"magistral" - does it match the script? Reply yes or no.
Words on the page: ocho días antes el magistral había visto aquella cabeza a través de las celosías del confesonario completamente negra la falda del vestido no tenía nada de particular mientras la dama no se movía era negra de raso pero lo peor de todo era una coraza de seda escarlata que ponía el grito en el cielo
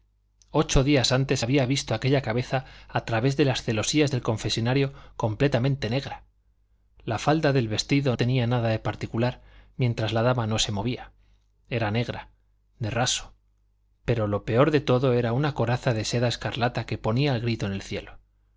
no